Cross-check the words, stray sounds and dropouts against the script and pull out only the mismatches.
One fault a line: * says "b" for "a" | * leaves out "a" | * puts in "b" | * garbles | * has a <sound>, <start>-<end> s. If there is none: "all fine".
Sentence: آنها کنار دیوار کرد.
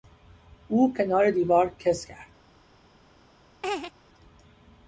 * says "او" for "آنها"
* puts in "کز"
* has a laugh, 3.6-3.9 s